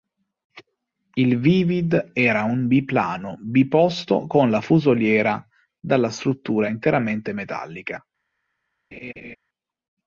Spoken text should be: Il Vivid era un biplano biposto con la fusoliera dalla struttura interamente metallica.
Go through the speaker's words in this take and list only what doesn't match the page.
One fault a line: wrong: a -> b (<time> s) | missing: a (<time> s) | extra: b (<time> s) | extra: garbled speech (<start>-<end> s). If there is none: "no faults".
no faults